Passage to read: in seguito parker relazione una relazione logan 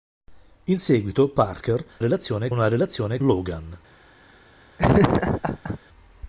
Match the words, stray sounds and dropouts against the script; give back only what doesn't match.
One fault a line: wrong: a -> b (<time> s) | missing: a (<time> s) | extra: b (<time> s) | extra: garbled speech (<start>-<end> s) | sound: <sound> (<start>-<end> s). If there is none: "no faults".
sound: laugh (4.8-5.8 s)